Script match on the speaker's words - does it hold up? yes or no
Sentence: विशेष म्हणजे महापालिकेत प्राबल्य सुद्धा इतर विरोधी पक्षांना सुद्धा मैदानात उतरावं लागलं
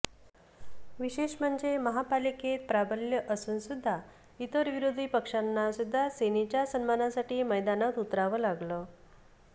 no